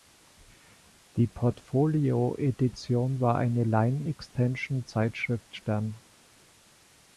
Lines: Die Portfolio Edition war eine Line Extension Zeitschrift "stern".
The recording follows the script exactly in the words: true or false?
true